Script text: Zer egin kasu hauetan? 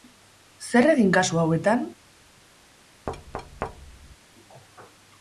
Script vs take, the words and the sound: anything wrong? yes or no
yes